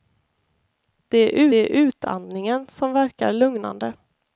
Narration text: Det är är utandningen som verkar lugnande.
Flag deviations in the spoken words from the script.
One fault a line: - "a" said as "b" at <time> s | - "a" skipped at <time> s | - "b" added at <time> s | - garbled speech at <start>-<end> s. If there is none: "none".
none